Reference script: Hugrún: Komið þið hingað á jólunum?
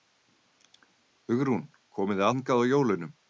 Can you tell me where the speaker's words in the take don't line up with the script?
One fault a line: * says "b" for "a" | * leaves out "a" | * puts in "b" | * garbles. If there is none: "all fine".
all fine